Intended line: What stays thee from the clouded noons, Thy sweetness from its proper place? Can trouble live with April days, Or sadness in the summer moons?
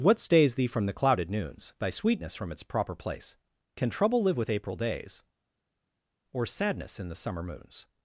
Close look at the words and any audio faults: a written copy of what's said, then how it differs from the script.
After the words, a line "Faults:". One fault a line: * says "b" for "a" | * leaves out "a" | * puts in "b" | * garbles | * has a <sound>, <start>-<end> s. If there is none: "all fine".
What stays thee from the clouded noons, Thy sweetness from its proper place? Can trouble live with April days, Or sadness in the summer moons?
Faults:
all fine